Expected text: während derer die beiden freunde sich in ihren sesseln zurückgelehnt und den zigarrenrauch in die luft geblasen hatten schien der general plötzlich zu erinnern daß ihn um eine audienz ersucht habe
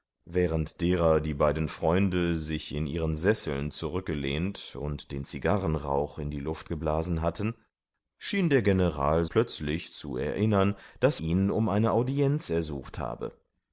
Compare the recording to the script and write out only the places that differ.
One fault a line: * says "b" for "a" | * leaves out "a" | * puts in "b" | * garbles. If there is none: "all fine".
all fine